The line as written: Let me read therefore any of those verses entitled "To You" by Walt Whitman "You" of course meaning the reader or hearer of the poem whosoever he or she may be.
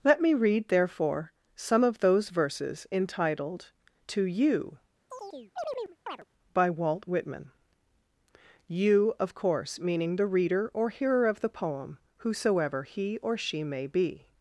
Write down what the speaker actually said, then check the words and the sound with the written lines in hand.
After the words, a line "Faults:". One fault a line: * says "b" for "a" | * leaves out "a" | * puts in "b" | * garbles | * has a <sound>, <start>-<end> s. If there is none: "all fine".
Let me read therefore some of those verses entitled "To You" by Walt Whitman "You" of course meaning the reader or hearer of the poem whosoever he or she may be.
Faults:
* says "some" for "any"
* has a chirp, 5.1-6.2 s